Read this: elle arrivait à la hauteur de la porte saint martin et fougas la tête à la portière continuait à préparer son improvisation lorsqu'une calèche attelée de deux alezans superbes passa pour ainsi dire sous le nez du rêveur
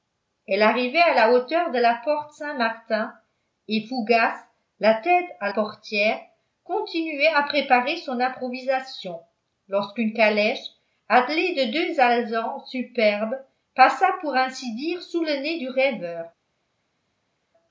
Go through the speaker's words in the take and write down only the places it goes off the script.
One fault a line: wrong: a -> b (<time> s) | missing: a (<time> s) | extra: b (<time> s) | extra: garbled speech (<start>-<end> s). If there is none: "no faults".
missing: la (5.5 s)